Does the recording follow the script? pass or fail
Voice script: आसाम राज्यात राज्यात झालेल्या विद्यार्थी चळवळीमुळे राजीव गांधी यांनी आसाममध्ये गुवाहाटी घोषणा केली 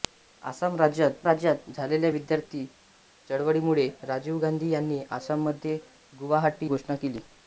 pass